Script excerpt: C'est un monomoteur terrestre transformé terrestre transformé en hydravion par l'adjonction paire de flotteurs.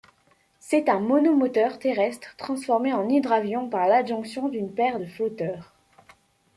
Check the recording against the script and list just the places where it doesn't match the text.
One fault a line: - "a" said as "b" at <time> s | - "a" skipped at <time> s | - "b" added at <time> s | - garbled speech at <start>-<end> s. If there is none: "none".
- "terrestre transformé" skipped at 2.9 s
- "d'une" added at 4.5 s